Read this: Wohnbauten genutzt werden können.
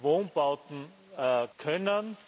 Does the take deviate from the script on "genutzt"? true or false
true